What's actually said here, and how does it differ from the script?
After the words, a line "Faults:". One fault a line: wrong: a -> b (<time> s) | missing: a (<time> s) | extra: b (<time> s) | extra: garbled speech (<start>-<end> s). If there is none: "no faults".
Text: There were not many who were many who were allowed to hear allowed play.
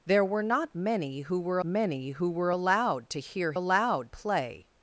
There were not many who were many who were allowed to hear allowed play.
Faults:
no faults